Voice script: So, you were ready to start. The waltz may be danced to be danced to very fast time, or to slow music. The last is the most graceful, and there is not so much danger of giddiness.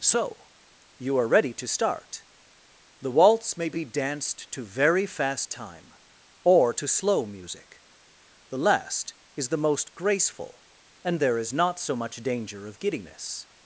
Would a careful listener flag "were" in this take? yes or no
yes